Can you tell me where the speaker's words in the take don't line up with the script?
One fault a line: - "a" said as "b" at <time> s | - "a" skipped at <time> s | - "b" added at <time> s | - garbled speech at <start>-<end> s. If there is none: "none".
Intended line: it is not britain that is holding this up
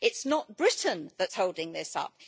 none